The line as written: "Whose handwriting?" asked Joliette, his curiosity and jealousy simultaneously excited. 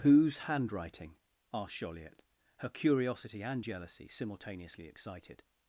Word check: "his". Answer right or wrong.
wrong